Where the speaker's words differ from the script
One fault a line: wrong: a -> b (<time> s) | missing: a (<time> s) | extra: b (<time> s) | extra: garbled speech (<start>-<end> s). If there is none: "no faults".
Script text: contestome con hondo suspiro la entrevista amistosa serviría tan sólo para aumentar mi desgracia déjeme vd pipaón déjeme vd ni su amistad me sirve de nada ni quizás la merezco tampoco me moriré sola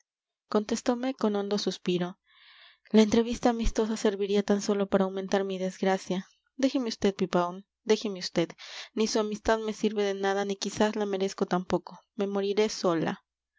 no faults